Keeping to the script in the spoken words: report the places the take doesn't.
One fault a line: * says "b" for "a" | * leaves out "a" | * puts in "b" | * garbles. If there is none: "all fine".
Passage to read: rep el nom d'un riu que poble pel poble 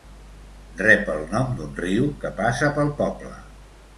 * says "passa" for "poble"